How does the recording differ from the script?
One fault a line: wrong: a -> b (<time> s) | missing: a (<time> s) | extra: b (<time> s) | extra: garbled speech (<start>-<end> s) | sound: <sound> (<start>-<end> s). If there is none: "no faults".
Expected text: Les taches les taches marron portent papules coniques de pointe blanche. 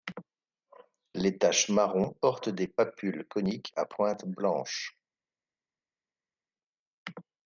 missing: les taches (1.7 s)
extra: des (2.5 s)
wrong: de -> à (3.7 s)